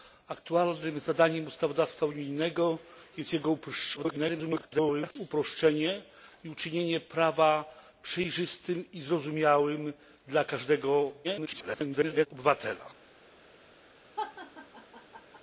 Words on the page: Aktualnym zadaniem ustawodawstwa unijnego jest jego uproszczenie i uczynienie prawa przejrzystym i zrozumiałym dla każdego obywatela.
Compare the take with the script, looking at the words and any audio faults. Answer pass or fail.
fail